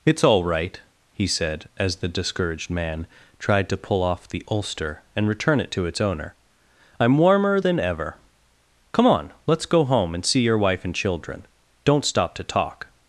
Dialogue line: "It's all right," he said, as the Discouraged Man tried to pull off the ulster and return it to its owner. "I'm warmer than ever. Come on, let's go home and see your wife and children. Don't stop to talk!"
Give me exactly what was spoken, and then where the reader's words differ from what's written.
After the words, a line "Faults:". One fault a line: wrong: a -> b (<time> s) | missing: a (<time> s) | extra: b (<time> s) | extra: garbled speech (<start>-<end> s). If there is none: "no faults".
"It's all right," he said, as the Discouraged Man tried to pull off the ulster and return it to its owner. "I'm warmer than ever. Come on, let's go home and see your wife and children. Don't stop to talk!"
Faults:
no faults